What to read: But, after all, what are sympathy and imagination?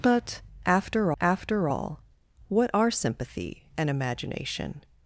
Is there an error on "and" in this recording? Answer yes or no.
no